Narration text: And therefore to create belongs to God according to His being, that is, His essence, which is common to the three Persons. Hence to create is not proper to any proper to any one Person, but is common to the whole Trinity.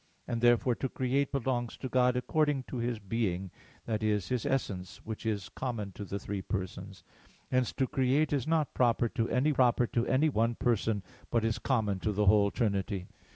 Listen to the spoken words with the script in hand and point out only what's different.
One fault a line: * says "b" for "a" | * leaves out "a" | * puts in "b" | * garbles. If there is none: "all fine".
all fine